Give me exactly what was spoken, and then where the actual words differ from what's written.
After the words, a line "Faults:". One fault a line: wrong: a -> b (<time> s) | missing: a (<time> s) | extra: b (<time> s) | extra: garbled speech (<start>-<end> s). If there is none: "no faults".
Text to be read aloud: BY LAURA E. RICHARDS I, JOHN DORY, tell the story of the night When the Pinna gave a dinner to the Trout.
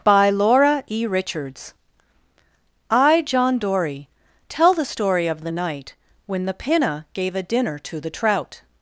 BY LAURA E. RICHARDS I, JOHN DORY, tell the story of the night When the Pinna gave a dinner to the Trout.
Faults:
no faults